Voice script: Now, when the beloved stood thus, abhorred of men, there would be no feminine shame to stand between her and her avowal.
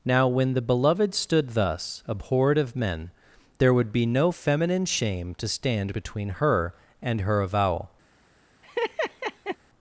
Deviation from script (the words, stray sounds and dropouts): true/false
true